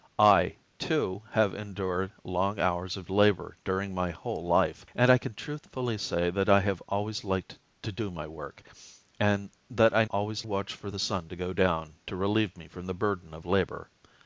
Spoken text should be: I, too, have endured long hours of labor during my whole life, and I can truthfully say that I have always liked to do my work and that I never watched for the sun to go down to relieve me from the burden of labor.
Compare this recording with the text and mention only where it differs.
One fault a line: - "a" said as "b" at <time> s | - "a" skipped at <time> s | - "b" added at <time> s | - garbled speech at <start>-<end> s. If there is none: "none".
- "never" said as "always" at 10.1 s